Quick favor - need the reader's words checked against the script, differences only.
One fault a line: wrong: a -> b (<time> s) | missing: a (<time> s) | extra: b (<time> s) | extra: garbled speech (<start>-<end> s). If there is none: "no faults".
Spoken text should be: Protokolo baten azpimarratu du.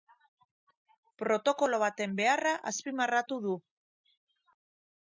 extra: beharra (2.2 s)